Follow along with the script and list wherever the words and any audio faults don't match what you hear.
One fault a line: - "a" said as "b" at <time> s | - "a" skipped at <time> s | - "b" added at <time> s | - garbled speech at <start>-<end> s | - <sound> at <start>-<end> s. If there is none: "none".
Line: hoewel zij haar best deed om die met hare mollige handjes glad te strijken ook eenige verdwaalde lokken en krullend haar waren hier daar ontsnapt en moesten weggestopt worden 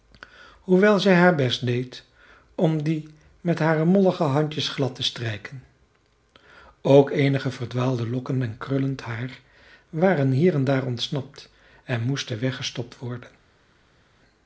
- "en" added at 10.5 s